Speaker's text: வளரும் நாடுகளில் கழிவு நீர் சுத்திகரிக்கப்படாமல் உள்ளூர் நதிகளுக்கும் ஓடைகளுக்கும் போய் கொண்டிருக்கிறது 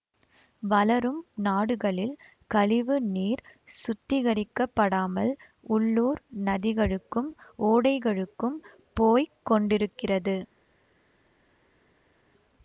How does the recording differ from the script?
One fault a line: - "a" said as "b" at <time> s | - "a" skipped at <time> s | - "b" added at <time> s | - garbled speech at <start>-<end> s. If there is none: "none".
none